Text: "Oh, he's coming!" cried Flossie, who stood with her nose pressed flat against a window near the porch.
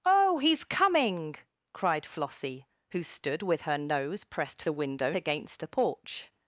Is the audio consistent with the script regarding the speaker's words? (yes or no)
no